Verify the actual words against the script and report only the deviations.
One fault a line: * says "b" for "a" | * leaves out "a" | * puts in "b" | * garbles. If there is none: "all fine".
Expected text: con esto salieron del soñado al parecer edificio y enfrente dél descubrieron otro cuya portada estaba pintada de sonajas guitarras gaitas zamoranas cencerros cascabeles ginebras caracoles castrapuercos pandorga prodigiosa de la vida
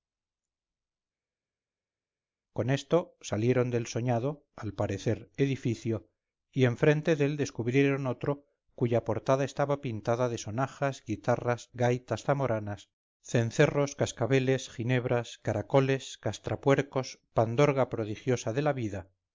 all fine